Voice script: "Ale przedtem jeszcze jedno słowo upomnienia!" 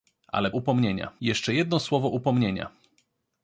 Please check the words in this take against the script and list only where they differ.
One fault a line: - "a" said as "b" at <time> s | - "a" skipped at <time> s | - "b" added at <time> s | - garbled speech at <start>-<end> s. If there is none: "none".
- "przedtem" said as "upomnienia" at 0.5 s